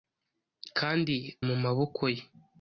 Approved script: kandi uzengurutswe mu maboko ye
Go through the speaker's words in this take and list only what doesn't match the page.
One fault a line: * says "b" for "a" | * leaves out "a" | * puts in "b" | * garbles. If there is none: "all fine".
* leaves out "uzengurutswe"